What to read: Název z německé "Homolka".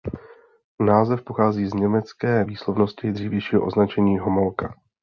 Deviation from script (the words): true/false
true